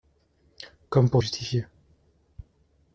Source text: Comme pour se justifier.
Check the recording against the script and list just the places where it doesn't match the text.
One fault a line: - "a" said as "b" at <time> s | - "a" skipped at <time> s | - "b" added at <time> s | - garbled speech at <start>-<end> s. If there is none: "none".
- "se" skipped at 1.2 s